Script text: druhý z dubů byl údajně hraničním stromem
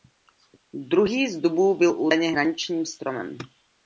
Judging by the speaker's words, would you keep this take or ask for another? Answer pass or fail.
pass